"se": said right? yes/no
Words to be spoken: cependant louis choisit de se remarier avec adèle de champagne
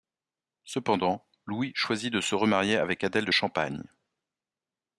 yes